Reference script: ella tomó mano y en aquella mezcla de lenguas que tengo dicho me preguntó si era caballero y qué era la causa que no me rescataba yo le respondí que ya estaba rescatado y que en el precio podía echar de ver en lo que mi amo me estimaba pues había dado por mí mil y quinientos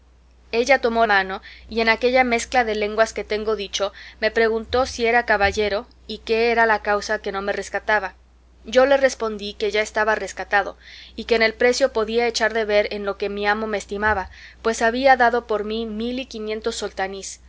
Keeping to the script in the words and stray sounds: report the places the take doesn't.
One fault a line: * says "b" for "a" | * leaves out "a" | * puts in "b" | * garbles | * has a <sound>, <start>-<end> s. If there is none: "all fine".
all fine